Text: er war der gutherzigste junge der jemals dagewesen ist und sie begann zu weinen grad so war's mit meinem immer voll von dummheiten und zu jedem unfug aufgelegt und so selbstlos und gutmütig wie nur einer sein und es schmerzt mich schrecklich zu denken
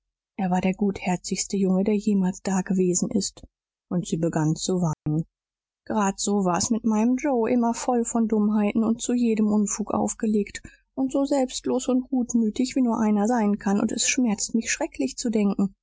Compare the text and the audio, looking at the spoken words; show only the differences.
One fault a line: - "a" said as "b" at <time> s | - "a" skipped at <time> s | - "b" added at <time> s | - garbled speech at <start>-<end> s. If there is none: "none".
- "joe" added at 7.2 s
- "kann" added at 13.6 s